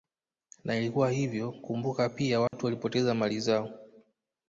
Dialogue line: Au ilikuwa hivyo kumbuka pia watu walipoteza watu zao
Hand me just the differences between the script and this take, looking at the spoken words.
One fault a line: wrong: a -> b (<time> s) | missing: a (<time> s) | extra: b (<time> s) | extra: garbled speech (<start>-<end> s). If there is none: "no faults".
wrong: Au -> Na (0.6 s)
wrong: watu -> mali (3.1 s)